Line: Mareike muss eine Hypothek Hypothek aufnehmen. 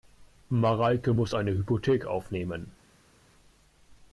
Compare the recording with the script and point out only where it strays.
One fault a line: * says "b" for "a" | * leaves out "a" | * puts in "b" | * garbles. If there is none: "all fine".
* leaves out "Hypothek"